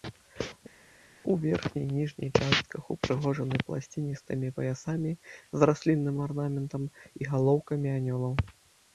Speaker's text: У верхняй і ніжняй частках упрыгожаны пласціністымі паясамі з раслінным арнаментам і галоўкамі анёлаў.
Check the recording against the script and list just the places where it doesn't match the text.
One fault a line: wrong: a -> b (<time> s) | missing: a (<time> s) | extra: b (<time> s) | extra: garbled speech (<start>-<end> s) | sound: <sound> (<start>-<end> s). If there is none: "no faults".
no faults